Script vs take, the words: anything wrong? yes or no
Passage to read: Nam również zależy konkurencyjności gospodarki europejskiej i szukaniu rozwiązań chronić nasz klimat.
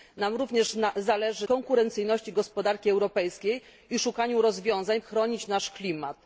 no